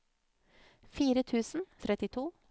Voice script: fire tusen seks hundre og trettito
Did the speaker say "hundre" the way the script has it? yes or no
no